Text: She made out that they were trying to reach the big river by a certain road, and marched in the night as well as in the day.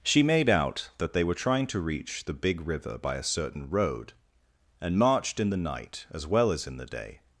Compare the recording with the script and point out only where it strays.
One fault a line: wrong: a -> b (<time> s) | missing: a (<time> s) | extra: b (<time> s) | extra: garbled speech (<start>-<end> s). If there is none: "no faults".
no faults